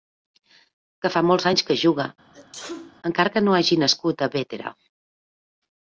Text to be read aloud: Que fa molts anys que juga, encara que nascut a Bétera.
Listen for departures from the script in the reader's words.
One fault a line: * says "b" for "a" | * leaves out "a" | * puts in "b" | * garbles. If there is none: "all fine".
* puts in "no hagi"